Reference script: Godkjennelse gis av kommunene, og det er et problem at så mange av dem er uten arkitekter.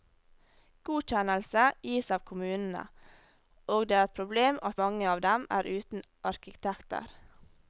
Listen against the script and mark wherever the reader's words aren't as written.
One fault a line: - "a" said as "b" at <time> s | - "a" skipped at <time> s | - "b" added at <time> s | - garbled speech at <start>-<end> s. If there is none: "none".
- "så" skipped at 4.8 s